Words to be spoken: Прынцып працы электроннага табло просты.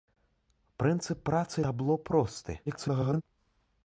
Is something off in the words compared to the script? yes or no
yes